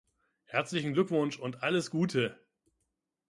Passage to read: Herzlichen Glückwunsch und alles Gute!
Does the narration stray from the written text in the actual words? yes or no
no